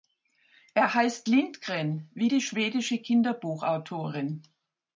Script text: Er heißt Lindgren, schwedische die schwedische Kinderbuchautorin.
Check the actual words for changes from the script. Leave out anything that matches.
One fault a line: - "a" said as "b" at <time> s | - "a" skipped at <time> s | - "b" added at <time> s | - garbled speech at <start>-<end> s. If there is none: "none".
- "schwedische" said as "wie" at 2.1 s